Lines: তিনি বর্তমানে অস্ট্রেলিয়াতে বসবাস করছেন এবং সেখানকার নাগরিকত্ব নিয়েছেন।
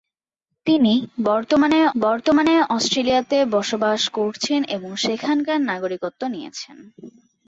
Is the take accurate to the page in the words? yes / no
no